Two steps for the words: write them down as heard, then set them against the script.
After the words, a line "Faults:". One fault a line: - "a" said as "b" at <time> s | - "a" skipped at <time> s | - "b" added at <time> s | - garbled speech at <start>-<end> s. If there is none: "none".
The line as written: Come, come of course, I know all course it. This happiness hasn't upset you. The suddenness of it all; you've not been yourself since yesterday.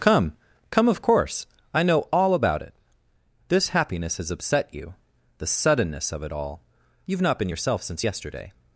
Come, come of course, I know all about it. This happiness has upset you. The suddenness of it all; you've not been yourself since yesterday.
Faults:
- "course" said as "about" at 2.3 s
- "hasn't" said as "has" at 4.2 s